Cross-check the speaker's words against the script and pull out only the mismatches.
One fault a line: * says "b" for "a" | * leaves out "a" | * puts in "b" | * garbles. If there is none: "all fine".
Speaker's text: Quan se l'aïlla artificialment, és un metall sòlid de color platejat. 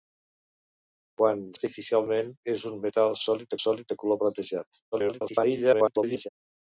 * leaves out "se l'aïlla"
* puts in "sòlid"
* garbles